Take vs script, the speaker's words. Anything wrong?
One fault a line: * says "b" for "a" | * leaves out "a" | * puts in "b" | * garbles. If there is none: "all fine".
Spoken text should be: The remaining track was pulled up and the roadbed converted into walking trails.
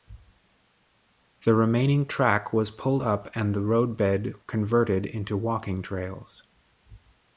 all fine